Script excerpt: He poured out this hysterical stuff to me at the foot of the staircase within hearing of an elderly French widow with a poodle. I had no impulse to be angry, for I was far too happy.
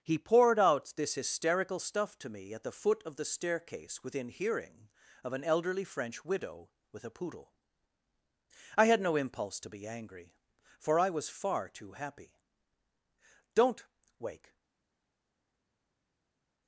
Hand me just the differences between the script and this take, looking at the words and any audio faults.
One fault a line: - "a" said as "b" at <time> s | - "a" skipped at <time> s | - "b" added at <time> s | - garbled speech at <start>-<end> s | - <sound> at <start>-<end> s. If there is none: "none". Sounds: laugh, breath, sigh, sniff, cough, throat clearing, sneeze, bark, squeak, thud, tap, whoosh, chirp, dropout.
- "Don't Wake" added at 13.5 s